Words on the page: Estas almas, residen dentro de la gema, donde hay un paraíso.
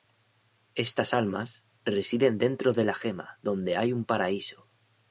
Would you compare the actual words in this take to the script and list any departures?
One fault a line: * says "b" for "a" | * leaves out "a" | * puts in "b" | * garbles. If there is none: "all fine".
all fine